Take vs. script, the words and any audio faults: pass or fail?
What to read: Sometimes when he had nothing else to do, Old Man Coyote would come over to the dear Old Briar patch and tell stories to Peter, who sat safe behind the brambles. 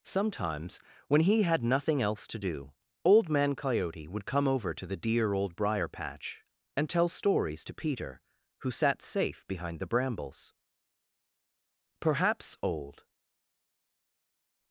fail